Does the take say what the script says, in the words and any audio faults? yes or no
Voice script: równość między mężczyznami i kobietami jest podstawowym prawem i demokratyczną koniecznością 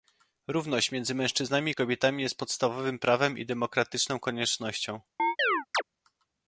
no